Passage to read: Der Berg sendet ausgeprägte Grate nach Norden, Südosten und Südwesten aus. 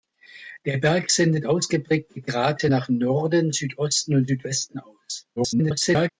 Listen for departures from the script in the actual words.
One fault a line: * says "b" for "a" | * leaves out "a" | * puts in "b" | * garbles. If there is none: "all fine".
* garbles